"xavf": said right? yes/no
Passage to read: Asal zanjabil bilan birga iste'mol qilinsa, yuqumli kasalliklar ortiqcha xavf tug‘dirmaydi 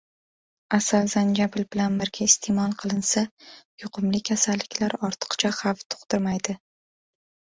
yes